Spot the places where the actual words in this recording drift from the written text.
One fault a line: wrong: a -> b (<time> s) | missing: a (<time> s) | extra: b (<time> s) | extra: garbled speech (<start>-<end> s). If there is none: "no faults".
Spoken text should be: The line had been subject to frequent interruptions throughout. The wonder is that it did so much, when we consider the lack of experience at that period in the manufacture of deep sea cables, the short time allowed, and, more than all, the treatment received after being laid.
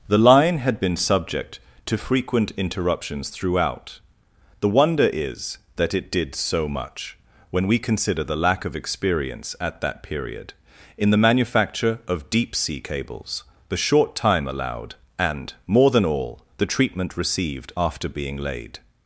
no faults